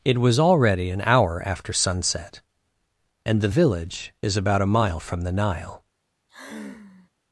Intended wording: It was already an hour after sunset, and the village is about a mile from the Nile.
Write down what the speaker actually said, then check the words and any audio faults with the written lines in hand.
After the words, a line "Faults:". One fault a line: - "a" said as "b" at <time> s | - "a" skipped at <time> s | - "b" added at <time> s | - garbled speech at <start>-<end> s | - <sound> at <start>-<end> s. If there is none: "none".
It was already an hour after sunset, and the village is about a mile from the Nile.
Faults:
- sigh at 6.3-7.1 s